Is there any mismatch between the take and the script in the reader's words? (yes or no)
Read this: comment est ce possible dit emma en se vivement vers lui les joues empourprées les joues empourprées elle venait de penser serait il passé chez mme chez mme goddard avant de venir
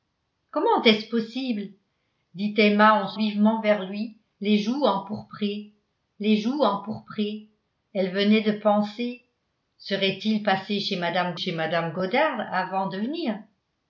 no